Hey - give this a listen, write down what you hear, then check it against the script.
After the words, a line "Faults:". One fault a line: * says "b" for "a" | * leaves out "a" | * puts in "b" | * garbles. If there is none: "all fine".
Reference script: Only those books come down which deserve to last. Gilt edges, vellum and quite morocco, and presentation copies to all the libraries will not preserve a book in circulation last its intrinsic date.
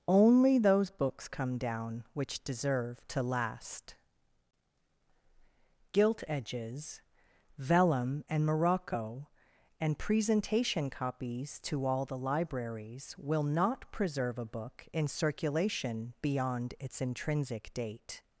Only those books come down which deserve to last. Gilt edges, vellum and morocco, and presentation copies to all the libraries will not preserve a book in circulation beyond its intrinsic date.
Faults:
* leaves out "quite"
* says "beyond" for "last"